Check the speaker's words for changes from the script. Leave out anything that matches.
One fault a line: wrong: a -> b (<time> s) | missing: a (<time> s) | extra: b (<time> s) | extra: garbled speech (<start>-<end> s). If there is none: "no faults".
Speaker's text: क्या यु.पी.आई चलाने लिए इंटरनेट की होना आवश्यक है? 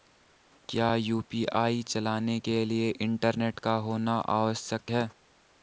extra: के (2.5 s)
wrong: की -> का (3.6 s)